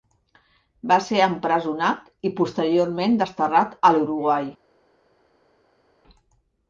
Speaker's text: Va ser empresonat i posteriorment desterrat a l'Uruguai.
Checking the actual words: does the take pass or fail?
pass